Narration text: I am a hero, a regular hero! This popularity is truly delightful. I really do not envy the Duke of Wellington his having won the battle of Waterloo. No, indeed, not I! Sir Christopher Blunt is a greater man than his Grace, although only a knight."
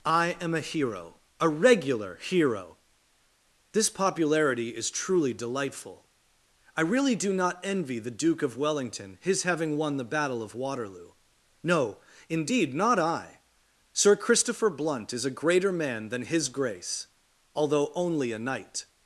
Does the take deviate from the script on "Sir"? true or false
false